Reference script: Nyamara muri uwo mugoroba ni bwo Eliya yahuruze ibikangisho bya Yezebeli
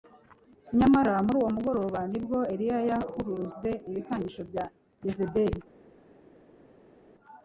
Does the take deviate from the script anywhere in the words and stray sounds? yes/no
no